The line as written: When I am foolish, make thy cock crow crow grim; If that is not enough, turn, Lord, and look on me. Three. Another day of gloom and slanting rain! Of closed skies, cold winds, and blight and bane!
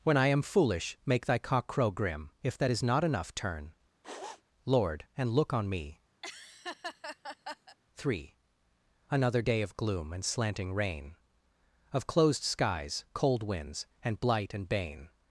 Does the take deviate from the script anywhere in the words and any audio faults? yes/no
yes